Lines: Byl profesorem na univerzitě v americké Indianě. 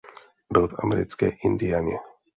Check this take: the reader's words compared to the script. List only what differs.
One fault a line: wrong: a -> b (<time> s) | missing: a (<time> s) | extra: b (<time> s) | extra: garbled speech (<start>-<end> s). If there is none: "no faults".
missing: profesorem na univerzitě (0.7 s)